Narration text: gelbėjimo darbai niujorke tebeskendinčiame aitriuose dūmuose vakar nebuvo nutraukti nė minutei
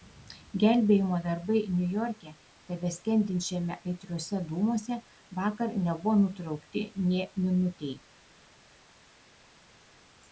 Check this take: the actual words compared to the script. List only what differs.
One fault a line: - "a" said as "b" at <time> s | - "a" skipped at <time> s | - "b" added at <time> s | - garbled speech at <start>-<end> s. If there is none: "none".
none